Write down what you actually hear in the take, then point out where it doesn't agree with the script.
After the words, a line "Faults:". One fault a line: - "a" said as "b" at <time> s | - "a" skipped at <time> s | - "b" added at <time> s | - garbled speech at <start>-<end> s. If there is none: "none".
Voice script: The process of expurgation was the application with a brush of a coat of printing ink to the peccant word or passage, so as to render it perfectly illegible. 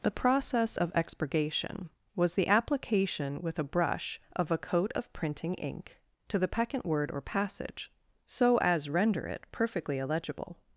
The process of expurgation was the application with a brush of a coat of printing ink to the peccant word or passage, so as render it perfectly illegible.
Faults:
- "to" skipped at 8.9 s